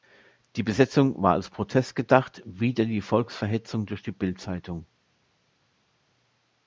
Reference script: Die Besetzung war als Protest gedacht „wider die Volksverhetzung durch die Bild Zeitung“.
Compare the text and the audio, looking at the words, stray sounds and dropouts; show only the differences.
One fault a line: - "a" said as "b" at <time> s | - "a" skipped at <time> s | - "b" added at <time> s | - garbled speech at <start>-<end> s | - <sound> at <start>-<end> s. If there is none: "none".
none